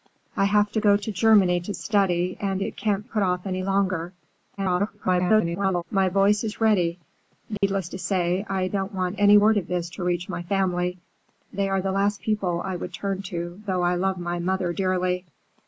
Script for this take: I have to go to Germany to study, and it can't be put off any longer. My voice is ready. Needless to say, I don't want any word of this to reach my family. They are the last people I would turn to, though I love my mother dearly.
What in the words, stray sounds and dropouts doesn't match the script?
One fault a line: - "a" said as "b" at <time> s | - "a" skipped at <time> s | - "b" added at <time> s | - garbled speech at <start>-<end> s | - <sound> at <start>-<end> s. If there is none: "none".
- "be" skipped at 3.1 s
- garbled speech at 4.6-5.8 s
- dropout at 7.6-7.6 s